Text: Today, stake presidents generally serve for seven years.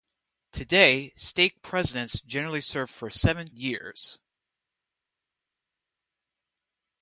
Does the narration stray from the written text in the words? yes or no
no